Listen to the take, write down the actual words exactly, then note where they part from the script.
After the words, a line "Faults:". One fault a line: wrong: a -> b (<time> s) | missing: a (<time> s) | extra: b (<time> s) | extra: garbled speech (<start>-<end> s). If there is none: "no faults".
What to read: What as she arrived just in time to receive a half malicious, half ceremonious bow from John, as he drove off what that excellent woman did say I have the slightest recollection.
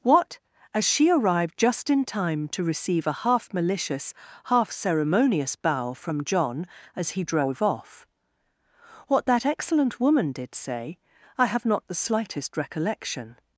What as she arrived just in time to receive a half malicious, half ceremonious bow from John, as he drove off what that excellent woman did say I have not the slightest recollection.
Faults:
extra: not (11.6 s)